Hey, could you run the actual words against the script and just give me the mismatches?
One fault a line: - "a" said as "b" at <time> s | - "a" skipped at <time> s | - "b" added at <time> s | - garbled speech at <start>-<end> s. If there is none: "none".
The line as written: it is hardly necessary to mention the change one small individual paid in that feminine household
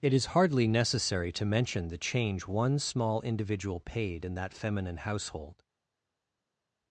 none